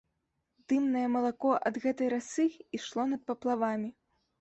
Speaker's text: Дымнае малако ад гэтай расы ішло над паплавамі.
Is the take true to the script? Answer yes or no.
yes